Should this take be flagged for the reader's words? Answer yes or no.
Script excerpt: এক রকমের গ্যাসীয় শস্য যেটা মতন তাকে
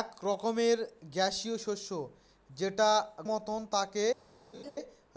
no